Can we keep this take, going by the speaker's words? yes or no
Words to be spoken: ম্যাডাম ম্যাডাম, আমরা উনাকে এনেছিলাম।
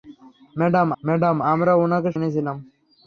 yes